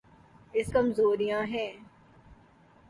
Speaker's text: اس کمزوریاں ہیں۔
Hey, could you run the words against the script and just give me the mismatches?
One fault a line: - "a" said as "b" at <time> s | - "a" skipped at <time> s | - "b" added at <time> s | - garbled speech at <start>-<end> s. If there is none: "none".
none